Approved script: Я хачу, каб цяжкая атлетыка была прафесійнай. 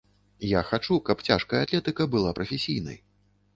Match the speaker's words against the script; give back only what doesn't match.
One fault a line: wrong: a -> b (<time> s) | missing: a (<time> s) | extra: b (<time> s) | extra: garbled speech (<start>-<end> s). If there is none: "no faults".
no faults